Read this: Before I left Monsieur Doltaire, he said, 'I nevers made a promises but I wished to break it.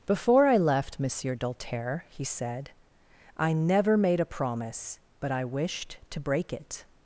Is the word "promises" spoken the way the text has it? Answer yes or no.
no